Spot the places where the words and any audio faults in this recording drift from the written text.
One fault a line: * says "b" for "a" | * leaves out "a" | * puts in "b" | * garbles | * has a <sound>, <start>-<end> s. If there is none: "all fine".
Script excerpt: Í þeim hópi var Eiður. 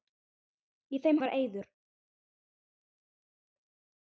* leaves out "hópi"